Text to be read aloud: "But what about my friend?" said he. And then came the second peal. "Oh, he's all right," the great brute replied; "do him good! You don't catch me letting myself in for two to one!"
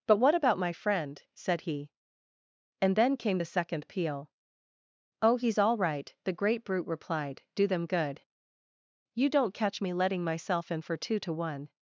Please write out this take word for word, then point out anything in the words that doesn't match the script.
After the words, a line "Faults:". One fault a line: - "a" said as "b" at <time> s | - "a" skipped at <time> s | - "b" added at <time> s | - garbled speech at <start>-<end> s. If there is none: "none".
"But what about my friend?" said he. And then came the second peal. "Oh, he's all right," the great brute replied; "do them good! You don't catch me letting myself in for two to one!"
Faults:
- "him" said as "them" at 7.7 s